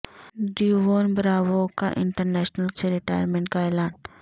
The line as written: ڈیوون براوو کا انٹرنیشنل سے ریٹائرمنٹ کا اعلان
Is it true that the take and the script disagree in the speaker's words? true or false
false